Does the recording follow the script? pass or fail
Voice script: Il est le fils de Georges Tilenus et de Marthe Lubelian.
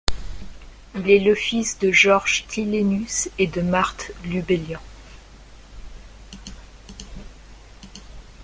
pass